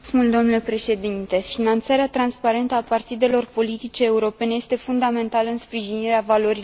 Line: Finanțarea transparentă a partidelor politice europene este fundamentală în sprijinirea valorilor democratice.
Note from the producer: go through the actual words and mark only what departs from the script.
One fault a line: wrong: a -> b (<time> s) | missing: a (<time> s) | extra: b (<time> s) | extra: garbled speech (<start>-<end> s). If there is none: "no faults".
no faults